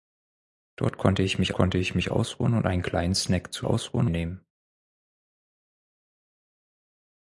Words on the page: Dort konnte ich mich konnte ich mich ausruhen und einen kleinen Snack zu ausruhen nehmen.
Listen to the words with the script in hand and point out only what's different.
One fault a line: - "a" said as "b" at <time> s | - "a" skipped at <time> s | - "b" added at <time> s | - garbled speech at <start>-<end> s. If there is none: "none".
none